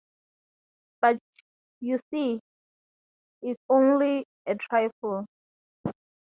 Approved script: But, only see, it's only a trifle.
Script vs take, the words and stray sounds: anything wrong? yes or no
yes